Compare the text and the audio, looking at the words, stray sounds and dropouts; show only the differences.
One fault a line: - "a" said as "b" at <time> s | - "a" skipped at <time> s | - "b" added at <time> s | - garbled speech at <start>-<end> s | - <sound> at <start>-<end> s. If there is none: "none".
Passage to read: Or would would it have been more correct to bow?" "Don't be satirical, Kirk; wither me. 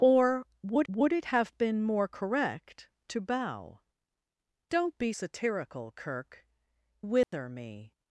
- dropout at 7.2-7.3 s